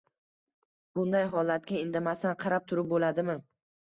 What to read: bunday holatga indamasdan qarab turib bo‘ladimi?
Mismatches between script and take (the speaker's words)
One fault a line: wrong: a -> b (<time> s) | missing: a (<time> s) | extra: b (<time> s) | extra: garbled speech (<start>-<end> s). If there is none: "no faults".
no faults